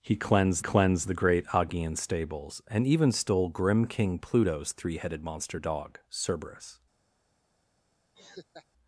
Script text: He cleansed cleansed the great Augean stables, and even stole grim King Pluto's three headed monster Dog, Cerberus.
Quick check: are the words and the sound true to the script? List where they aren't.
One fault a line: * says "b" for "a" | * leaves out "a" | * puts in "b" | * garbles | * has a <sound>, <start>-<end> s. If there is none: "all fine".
* has a laugh, 8.1-8.7 s